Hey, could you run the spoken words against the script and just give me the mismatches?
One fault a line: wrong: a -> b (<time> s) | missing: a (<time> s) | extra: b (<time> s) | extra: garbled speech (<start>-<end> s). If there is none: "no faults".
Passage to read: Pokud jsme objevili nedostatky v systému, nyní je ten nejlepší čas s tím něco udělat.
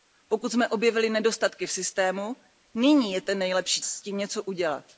missing: čas (3.8 s)